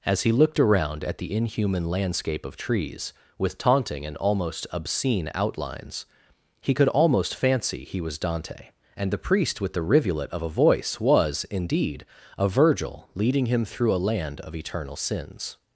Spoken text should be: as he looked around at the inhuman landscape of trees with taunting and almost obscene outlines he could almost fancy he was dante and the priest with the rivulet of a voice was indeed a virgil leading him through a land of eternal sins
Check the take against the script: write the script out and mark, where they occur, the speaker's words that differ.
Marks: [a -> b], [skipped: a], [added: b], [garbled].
as he looked around at the inhuman landscape of trees with taunting and almost obscene outlines he could almost fancy he was dante and the priest with the rivulet of a voice was indeed a virgil leading him through a land of eternal sins